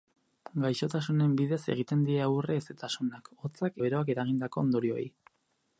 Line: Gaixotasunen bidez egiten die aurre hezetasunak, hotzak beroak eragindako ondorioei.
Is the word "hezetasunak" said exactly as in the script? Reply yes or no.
yes